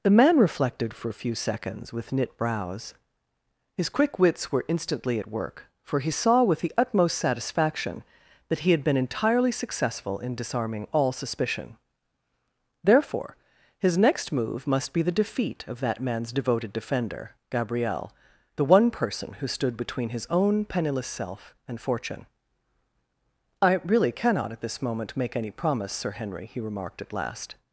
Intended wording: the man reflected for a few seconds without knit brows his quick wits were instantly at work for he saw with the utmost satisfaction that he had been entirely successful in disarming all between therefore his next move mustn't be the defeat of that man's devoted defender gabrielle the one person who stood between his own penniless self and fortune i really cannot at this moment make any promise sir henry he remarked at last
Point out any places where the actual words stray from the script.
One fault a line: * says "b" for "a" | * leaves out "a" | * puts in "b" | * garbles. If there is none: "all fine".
* says "with" for "without"
* says "suspicion" for "between"
* says "must" for "mustn't"